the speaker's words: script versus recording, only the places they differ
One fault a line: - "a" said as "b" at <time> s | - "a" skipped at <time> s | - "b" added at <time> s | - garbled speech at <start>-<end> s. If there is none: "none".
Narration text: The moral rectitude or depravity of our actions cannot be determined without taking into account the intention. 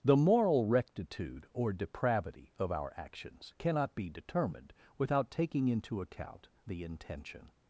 none